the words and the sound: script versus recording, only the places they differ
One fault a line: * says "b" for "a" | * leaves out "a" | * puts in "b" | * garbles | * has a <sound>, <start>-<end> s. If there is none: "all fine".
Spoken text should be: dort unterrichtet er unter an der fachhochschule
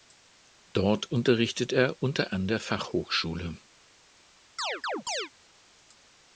* has a chirp, 4.6-5.3 s